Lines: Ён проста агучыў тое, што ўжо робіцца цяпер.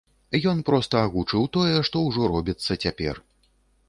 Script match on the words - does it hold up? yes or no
yes